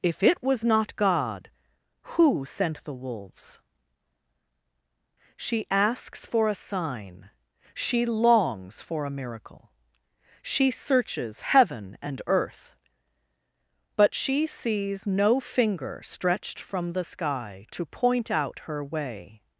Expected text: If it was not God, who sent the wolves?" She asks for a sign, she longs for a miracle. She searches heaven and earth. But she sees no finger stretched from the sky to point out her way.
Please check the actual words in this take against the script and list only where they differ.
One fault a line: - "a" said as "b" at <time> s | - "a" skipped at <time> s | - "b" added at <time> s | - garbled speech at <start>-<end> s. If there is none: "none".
none